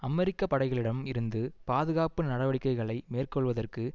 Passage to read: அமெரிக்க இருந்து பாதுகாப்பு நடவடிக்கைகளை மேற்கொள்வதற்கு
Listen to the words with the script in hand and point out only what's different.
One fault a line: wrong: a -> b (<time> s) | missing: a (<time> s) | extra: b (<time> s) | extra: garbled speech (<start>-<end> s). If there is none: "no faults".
extra: படைகளிடம் (0.4 s)